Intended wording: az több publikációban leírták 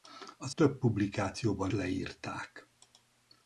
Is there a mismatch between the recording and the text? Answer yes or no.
no